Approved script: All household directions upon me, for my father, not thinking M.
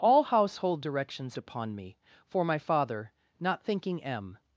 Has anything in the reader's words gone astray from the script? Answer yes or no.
no